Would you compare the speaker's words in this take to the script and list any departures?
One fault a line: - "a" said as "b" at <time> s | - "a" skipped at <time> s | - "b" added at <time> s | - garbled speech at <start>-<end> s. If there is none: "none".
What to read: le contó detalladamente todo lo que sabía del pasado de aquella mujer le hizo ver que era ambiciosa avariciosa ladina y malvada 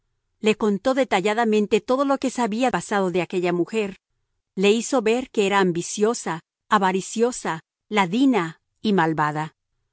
- "del" skipped at 2.7 s